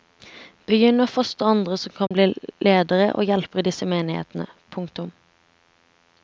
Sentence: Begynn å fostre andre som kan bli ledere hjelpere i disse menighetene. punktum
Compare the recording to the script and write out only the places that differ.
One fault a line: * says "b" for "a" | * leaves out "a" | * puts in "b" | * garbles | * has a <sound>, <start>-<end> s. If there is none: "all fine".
* has a dropout, 2.1-2.1 s
* puts in "og"